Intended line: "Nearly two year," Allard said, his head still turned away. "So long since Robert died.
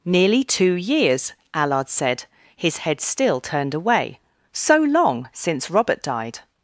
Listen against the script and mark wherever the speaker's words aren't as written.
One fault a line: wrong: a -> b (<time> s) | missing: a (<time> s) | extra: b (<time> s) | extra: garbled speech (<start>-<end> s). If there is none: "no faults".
wrong: year -> years (0.7 s)